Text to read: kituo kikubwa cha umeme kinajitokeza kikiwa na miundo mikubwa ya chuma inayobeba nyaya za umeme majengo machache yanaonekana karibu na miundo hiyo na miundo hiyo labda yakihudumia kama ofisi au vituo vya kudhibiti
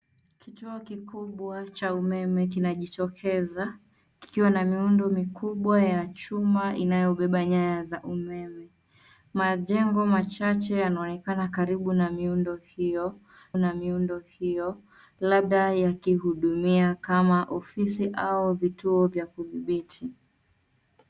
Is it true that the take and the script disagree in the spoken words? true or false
false